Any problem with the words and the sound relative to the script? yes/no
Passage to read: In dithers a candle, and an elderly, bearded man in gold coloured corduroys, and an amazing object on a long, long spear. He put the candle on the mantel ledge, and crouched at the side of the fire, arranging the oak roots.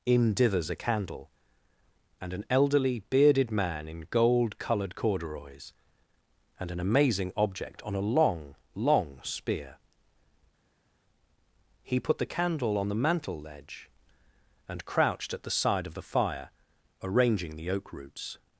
no